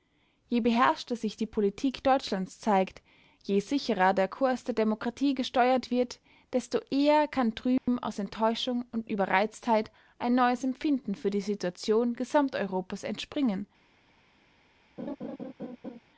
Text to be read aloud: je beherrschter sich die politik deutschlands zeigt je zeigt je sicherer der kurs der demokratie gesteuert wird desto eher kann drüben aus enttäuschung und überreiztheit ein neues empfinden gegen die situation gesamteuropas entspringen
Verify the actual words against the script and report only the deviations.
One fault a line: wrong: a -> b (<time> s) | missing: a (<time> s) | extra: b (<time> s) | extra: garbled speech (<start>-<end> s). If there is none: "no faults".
missing: zeigt je (3.6 s)
wrong: gegen -> für (11.1 s)